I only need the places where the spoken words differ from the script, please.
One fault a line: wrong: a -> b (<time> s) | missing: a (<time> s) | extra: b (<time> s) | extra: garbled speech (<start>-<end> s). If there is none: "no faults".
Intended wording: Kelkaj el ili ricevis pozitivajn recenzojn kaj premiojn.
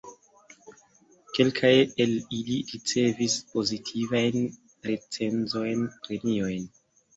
missing: kaj (5.8 s)